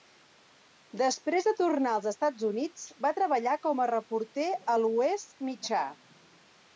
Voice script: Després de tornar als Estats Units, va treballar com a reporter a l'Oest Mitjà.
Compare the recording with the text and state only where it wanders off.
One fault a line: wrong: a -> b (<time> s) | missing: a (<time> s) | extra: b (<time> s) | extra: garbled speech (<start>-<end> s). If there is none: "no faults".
no faults